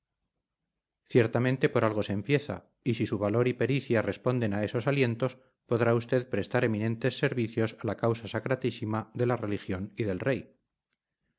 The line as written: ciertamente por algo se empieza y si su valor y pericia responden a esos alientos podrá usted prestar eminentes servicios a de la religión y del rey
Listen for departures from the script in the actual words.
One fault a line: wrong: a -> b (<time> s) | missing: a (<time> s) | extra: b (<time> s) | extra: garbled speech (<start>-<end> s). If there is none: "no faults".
extra: la causa sacratísima (7.8 s)